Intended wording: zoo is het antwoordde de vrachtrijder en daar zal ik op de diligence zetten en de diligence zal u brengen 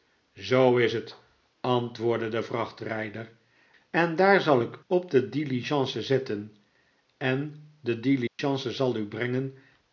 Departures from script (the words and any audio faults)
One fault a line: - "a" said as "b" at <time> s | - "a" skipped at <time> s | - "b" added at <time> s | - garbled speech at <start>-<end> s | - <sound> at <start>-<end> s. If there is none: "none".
- dropout at 8.3-8.4 s